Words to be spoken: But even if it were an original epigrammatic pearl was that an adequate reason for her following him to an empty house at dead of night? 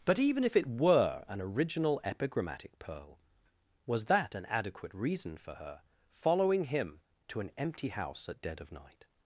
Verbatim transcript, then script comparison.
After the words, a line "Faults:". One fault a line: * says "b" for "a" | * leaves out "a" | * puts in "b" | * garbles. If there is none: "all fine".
But even if it were an original epigrammatic pearl was that an adequate reason for her following him to an empty house at dead of night?
Faults:
all fine